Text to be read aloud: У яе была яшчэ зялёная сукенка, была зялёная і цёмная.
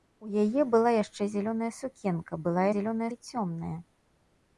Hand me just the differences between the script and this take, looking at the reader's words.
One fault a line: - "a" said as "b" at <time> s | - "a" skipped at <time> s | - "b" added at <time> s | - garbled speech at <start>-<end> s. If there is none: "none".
none